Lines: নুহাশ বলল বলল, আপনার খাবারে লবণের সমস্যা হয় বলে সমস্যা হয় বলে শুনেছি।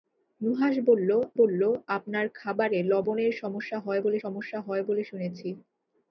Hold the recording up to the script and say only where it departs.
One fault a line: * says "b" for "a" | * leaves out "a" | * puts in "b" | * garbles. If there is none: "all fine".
all fine